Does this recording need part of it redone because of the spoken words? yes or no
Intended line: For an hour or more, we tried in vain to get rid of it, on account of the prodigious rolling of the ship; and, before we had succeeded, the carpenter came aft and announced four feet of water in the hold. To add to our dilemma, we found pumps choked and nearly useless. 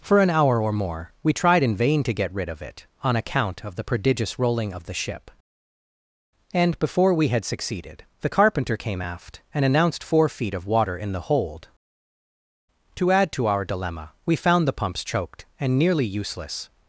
yes